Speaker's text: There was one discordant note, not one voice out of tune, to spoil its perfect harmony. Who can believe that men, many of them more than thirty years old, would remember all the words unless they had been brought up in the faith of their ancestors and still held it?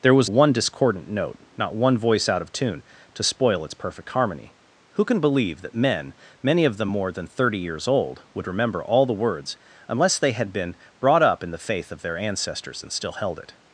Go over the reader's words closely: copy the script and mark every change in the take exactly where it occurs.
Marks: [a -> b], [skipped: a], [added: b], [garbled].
There was one discordant note, not one voice out of tune, to spoil its perfect harmony. Who can believe that men, many of them more than thirty years old, would remember all the words unless they had been brought up in the faith of their ancestors and still held it?